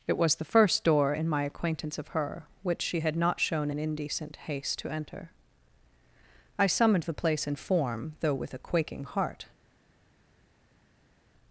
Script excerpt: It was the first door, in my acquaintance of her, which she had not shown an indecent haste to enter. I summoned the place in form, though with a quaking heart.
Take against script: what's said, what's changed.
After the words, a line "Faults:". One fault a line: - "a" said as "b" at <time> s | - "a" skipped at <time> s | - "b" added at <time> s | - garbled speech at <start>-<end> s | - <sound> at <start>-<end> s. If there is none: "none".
It was the first door, in my acquaintance of her, which she had not shown an indecent haste to enter. I summoned the place in form, though with a quaking heart.
Faults:
none